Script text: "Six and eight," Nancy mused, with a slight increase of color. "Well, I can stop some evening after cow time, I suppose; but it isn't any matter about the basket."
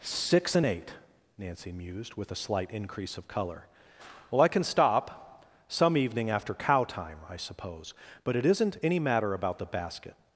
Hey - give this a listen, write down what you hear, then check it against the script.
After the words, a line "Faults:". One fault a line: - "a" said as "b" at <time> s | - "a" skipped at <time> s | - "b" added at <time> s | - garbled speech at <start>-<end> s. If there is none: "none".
"Six and eight," Nancy mused, with a slight increase of color. "Well, I can stop some evening after cow time, I suppose; but it isn't any matter about the basket."
Faults:
none